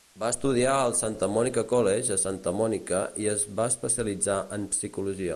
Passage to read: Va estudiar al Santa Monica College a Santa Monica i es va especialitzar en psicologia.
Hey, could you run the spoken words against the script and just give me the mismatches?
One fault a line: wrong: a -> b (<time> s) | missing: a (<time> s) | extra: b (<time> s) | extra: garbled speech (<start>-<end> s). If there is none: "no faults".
no faults